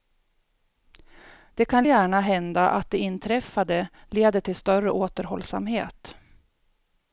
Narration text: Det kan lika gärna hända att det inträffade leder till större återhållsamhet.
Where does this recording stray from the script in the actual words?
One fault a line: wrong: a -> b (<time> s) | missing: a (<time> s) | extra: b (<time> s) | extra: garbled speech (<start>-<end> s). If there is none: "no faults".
missing: lika (1.8 s)